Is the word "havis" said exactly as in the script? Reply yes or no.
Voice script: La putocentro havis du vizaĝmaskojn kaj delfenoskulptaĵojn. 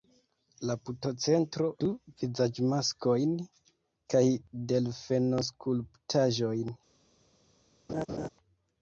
no